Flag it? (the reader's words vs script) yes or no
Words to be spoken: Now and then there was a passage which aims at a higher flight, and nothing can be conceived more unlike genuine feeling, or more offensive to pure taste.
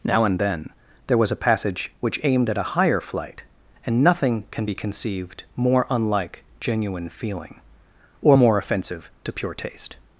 yes